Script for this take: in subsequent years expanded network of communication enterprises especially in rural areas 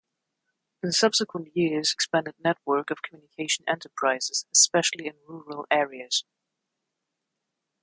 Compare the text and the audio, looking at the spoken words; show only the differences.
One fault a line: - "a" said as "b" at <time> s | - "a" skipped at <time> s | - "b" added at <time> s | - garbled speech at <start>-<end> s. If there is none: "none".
none